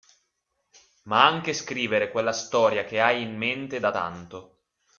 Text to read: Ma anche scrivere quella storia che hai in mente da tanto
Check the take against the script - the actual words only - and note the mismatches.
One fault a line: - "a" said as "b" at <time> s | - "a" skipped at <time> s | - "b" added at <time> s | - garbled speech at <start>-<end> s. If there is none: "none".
none